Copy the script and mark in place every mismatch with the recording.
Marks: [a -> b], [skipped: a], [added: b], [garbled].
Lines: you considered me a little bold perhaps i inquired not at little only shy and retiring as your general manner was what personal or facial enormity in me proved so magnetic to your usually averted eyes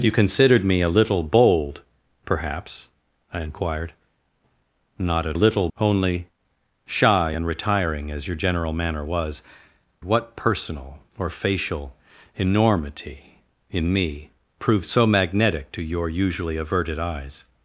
you considered me a little bold perhaps i inquired not at little only shy and retiring as your general manner was what personal or facial enormity in me proved so magnetic to your usually averted eyes